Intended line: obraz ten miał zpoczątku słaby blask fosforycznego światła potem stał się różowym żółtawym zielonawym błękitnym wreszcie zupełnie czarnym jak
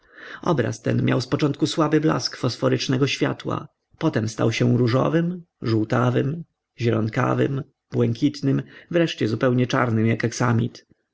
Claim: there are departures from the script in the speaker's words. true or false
false